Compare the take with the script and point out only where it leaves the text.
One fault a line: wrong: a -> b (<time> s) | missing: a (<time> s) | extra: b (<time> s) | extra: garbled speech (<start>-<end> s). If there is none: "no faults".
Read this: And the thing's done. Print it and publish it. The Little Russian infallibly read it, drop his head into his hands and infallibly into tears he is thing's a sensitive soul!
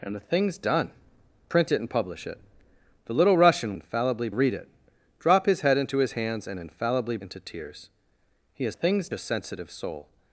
no faults